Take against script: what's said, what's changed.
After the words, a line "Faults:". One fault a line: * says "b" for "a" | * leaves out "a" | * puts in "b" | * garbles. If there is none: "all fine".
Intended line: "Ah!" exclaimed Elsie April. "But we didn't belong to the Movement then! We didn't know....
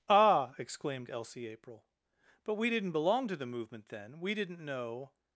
"Ah!" exclaimed Elsie April. "But we didn't belong to the Movement then! We didn't know....
Faults:
all fine